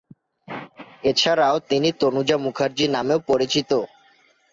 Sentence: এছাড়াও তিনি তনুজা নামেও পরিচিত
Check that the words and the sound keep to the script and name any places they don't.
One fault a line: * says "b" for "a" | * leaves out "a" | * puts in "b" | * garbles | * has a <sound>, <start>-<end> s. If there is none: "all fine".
* puts in "মুখার্জি"